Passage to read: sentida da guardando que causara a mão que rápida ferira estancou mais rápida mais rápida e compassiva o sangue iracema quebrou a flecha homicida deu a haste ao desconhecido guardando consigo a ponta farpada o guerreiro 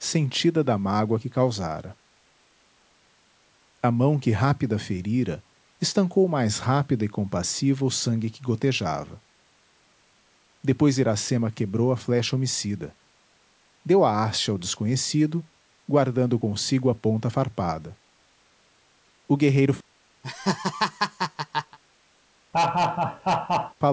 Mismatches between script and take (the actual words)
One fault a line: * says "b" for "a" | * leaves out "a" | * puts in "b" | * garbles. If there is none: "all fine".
* says "mágoa" for "guardando"
* leaves out "mais rápida"
* puts in "que gotejava depois"